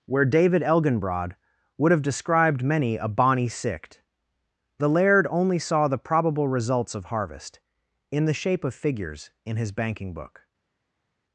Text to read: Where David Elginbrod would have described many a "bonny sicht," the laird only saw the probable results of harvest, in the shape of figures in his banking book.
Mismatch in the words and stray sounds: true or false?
false